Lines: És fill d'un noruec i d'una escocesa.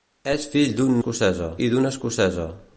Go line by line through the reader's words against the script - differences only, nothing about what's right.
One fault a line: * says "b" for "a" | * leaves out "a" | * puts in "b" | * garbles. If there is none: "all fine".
* says "escocesa" for "noruec"